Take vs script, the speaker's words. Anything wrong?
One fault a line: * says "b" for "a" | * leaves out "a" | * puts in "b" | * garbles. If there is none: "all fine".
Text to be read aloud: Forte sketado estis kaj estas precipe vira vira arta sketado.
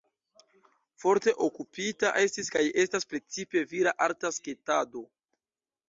* says "okupita" for "sketado"
* leaves out "vira"